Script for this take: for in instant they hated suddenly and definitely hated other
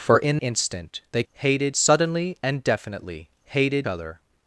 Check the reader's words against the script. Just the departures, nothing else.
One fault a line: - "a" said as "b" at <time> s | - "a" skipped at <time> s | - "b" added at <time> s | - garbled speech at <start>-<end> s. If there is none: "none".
none